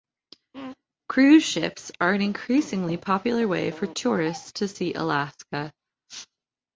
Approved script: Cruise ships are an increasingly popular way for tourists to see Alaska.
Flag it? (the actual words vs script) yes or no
no